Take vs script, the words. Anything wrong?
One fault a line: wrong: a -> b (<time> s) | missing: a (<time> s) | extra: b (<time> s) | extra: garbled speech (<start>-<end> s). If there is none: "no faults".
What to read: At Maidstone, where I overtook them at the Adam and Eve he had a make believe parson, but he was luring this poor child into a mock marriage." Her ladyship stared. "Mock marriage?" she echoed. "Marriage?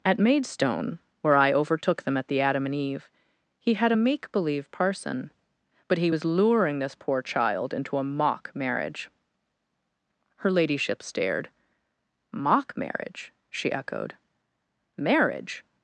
no faults